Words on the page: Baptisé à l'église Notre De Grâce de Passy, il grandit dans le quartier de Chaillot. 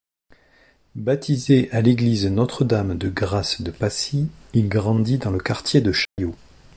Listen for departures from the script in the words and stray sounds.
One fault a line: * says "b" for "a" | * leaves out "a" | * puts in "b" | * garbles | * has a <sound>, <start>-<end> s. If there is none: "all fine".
* puts in "Dame"
* has a dropout, 6.0-6.2 s